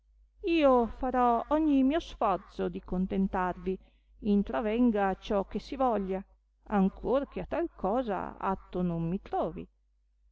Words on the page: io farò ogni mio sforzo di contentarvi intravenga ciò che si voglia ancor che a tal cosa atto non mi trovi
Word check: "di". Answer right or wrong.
right